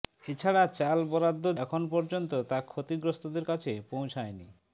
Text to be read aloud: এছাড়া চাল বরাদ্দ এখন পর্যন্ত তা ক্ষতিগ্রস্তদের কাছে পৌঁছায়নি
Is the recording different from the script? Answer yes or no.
no